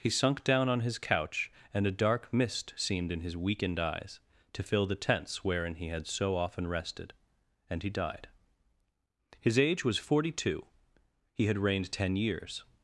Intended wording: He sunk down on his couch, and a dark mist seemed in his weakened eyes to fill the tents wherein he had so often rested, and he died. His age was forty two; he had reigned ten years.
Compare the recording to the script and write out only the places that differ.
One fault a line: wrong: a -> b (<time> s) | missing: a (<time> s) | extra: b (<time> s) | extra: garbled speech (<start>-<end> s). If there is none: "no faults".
no faults